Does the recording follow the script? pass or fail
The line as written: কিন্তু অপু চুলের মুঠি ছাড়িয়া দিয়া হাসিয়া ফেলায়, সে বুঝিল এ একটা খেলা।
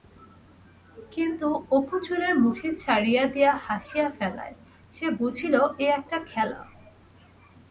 pass